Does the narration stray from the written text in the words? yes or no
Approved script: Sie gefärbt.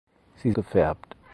no